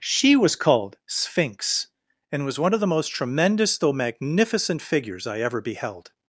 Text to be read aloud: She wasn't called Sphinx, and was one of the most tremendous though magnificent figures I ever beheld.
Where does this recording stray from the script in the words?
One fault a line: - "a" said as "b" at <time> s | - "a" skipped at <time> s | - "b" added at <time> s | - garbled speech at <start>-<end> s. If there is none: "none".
- "wasn't" said as "was" at 0.3 s